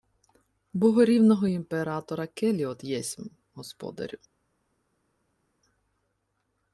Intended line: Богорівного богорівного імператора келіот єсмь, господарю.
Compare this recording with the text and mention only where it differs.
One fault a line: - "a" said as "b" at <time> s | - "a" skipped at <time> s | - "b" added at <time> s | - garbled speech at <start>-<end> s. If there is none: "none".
- "богорівного" skipped at 1.5 s